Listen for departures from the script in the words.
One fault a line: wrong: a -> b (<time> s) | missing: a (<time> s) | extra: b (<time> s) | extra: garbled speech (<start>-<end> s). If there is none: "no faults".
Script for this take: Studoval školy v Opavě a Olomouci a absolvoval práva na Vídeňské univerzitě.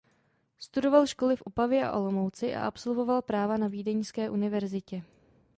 no faults